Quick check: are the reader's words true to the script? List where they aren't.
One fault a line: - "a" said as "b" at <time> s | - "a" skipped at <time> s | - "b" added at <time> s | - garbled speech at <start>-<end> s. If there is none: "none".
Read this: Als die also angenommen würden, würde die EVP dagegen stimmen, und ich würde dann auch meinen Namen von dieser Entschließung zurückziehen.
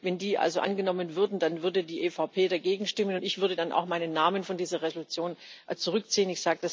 - "Als" said as "Wenn" at 0.0 s
- "dann" added at 1.4 s